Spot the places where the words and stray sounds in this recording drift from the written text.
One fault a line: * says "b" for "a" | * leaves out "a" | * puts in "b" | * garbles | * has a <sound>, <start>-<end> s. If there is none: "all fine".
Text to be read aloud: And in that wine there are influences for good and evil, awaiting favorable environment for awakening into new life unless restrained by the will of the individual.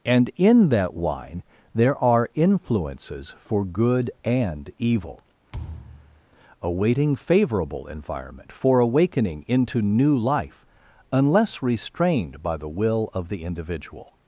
* has a thud, 5.5-6.2 s